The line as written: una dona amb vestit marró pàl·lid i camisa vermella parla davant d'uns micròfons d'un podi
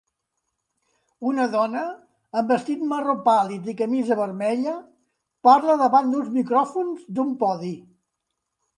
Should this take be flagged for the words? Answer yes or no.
no